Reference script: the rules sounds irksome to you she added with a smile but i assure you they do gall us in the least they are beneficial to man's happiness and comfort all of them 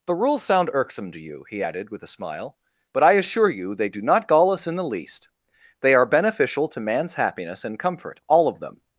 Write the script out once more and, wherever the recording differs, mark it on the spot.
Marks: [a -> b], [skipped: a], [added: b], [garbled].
the rules [sounds -> sound] irksome to you [she -> he] added with a smile but i assure you they do [added: not] gall us in the least they are beneficial to man's happiness and comfort all of them